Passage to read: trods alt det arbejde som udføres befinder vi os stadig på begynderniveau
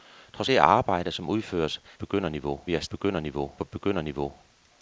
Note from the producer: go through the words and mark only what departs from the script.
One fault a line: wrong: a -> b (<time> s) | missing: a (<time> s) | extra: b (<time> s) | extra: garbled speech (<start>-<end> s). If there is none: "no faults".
missing: alt (0.5 s)
wrong: befinder -> begynderniveau (1.9 s)
wrong: stadig -> begynderniveau (2.8 s)